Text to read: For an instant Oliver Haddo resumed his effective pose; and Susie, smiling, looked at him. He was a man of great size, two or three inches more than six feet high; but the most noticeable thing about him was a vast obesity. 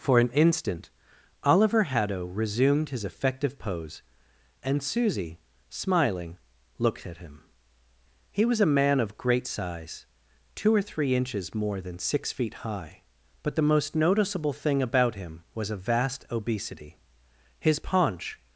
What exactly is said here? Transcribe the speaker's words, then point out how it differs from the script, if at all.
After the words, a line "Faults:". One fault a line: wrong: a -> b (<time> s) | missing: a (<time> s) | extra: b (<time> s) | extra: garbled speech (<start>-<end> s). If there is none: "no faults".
For an instant Oliver Haddo resumed his effective pose; and Susie, smiling, looked at him. He was a man of great size, two or three inches more than six feet high; but the most noticeable thing about him was a vast obesity. His paunch
Faults:
extra: His paunch (17.6 s)